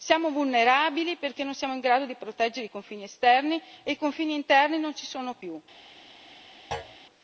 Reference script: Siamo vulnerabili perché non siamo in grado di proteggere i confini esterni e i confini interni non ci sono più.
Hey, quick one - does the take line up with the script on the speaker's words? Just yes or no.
yes